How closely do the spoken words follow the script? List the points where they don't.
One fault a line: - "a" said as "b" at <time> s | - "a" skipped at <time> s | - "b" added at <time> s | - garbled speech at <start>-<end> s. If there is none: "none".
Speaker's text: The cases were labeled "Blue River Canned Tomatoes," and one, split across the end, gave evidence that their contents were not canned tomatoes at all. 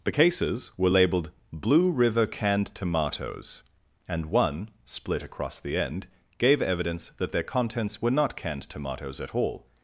none